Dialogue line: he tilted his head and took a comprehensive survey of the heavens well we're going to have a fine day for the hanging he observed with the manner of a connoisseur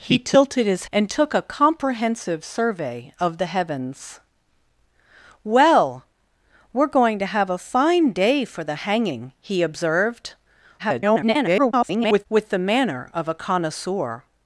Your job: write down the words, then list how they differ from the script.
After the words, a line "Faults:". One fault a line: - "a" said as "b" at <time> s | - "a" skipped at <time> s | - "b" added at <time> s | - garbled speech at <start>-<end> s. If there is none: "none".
he tilted his and took a comprehensive survey of the heavens well we're going to have a fine day for the hanging he observed [garbled] with the manner of a connoisseur
Faults:
- "head" skipped at 0.8 s
- garbled speech at 10.8-12.3 s